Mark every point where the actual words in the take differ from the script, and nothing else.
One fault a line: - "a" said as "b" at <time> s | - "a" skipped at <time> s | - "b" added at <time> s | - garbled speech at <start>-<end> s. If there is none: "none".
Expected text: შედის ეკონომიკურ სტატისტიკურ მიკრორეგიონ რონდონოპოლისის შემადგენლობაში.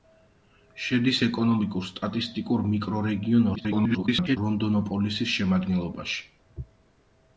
- garbled speech at 3.6-4.4 s